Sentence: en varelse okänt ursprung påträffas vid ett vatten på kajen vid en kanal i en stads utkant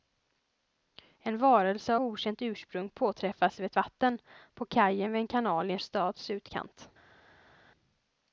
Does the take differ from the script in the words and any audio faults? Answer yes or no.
no